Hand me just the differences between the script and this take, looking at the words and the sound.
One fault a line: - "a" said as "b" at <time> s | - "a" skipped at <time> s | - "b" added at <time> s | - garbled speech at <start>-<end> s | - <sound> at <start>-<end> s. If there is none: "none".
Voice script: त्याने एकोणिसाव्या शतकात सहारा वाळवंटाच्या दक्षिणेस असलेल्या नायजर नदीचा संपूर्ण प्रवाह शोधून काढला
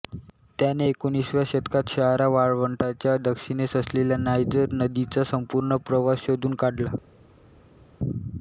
none